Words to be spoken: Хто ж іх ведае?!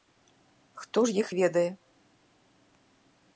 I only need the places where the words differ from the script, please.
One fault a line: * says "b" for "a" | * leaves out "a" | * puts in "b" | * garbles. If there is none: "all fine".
all fine